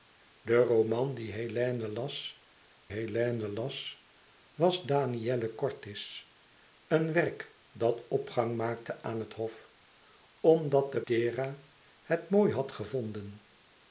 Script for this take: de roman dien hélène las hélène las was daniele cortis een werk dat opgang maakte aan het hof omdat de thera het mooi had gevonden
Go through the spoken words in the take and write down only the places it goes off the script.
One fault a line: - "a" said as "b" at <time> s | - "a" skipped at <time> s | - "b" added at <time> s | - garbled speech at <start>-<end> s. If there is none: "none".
none